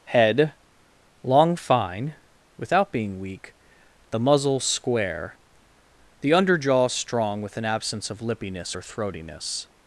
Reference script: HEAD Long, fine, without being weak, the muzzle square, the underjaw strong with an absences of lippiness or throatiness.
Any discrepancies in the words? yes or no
yes